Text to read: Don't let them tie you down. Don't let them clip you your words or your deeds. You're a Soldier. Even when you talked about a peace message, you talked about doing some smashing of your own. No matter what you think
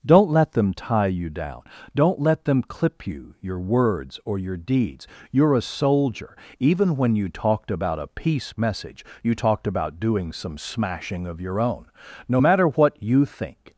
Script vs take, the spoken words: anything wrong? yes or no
no